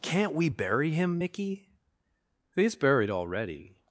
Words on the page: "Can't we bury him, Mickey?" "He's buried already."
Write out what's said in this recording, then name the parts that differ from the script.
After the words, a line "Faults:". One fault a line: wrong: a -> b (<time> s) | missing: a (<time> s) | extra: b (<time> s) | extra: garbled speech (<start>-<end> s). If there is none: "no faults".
"Can't we bury him, Mickey?" "He's buried already."
Faults:
no faults